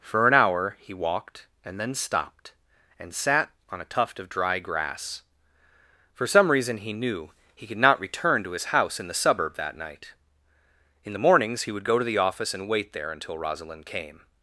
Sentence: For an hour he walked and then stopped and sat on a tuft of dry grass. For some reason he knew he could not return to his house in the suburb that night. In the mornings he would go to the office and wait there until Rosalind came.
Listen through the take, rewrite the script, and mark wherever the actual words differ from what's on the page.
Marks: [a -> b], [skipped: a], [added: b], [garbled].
For an hour he walked and then stopped and sat on a tuft of dry grass. For some reason he knew he could not return to his house in the suburb that night. In the mornings he would go to the office and wait there until Rosalind came.